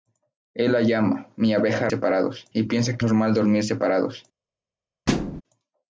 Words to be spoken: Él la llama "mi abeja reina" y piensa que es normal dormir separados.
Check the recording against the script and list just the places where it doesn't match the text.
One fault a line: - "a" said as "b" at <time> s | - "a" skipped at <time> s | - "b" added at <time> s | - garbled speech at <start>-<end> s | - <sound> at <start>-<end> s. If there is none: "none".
- "reina" said as "separados" at 1.9 s
- "es" skipped at 3.0 s
- thud at 5.1-5.4 s